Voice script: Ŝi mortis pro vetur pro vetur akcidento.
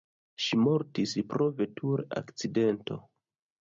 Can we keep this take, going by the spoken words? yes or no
no